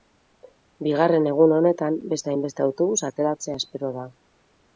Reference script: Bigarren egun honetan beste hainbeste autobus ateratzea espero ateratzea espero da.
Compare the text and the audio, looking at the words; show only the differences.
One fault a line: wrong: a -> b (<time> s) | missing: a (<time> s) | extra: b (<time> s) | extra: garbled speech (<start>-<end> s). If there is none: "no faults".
missing: ateratzea espero (3.9 s)